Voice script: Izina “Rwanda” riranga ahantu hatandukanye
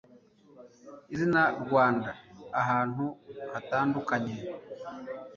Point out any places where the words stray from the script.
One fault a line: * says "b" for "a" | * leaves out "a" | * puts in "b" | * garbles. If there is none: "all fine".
* leaves out "riranga"